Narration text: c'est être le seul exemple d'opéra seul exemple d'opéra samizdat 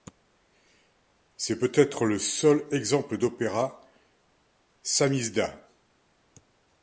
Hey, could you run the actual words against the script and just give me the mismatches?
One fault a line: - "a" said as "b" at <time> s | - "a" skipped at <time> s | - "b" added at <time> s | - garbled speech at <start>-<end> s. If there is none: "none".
- "peut" added at 1.6 s
- "seul exemple d'opéra" skipped at 3.8 s